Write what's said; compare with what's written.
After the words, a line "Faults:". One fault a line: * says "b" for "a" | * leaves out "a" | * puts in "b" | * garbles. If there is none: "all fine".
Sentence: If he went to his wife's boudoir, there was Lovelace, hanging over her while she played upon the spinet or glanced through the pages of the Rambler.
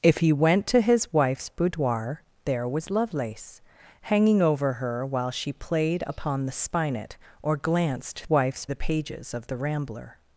If he went to his wife's boudoir, there was Lovelace, hanging over her while she played upon the spinet or glanced wife's the pages of the Rambler.
Faults:
* says "wife's" for "through"